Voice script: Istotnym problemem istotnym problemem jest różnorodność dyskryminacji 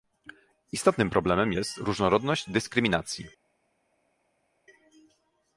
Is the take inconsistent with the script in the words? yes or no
yes